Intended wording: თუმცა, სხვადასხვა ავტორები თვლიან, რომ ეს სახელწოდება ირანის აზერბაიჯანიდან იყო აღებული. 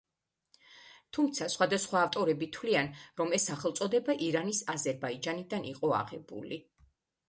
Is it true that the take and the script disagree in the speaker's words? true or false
false